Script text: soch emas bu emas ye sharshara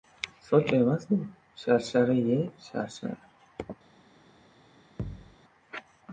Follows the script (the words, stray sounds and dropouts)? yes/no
no